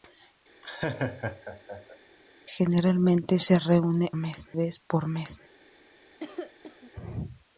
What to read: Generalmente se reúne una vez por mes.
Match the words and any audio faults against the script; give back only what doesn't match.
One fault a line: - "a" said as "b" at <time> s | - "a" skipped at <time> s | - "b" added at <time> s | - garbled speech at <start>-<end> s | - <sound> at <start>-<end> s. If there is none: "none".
- laugh at 0.6-2.0 s
- "una" said as "mes" at 4.1 s
- cough at 6.2-6.9 s